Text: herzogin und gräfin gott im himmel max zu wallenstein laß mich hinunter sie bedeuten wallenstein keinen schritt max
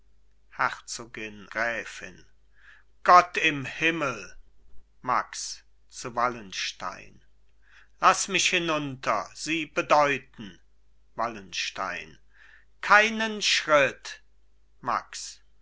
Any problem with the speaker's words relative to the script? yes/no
yes